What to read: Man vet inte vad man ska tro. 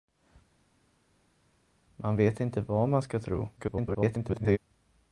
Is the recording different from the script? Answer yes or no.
yes